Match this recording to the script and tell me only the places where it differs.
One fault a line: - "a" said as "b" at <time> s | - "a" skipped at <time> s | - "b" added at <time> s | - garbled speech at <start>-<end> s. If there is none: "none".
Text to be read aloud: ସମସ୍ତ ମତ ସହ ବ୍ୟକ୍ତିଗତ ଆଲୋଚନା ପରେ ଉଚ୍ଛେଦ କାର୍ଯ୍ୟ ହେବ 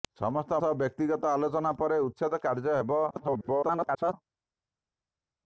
- "ମତ" skipped at 0.6 s
- garbled speech at 3.1-4.1 s